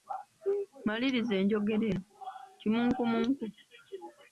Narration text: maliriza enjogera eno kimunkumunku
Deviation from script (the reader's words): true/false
false